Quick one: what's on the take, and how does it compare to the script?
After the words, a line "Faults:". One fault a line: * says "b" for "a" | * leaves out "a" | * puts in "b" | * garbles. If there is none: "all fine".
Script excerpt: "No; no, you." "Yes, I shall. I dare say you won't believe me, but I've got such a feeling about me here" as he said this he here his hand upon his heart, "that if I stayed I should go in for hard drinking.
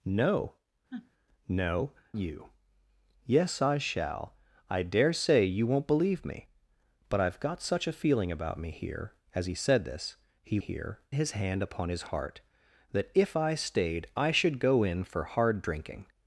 "No; no, you." "Yes, I shall. I dare say you won't believe me, but I've got such a feeling about me here" as he said this he here his hand upon his heart, "that if I stayed I should go in for hard drinking.
Faults:
all fine